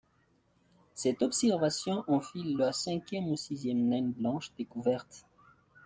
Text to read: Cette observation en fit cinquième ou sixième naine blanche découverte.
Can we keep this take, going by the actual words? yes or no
no